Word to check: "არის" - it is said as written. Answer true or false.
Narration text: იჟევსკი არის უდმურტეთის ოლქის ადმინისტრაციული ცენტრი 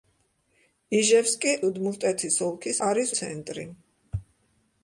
false